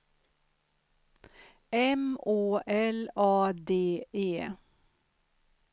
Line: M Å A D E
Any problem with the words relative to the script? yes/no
yes